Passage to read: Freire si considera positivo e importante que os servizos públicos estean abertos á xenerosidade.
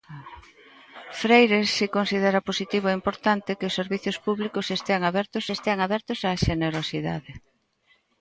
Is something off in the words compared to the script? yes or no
yes